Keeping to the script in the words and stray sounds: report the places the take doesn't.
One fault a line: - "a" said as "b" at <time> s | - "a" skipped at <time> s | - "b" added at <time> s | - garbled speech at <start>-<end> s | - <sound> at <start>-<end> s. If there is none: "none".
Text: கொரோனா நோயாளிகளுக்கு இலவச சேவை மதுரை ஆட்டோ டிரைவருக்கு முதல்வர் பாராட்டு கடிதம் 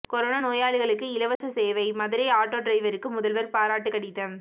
- dropout at 1.4-1.4 s